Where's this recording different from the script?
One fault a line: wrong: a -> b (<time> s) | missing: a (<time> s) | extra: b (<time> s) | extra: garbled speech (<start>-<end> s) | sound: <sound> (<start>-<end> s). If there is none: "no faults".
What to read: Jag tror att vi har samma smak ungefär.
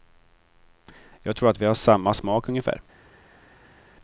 no faults